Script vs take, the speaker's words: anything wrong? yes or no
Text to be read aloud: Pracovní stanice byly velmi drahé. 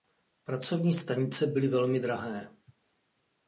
no